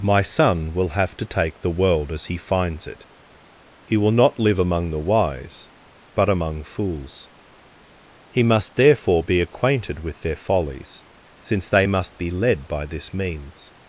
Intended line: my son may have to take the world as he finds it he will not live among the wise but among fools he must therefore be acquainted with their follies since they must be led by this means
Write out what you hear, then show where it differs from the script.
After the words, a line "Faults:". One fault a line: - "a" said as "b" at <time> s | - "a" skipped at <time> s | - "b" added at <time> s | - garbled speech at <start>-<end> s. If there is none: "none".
my son will have to take the world as he finds it he will not live among the wise but among fools he must therefore be acquainted with their follies since they must be led by this means
Faults:
- "may" said as "will" at 0.7 s